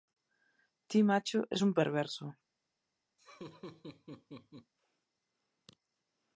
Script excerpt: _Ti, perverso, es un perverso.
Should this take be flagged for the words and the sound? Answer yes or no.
yes